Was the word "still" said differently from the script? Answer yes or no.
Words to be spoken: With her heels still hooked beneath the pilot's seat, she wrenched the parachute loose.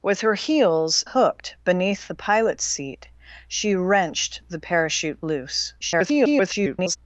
yes